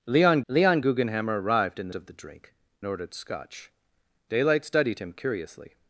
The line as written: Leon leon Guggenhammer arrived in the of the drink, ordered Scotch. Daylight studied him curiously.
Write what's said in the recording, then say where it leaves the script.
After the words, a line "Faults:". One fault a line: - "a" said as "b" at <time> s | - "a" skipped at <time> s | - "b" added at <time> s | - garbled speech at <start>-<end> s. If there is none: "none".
Leon leon Guggenhammer arrived in the of the drink, ordered Scotch. Daylight studied him curiously.
Faults:
none